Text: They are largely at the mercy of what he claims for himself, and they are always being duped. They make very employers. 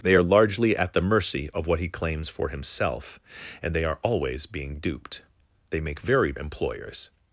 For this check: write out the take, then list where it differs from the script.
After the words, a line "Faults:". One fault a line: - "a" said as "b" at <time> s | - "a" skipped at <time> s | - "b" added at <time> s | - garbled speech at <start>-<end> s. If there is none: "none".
They are largely at the mercy of what he claims for himself, and they are always being duped. They make very employers.
Faults:
none